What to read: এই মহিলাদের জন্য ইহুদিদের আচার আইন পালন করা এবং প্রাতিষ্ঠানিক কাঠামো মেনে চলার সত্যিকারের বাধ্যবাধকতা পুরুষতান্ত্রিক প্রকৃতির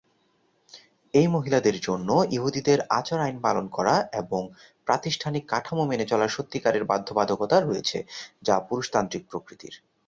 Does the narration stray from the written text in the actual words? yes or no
yes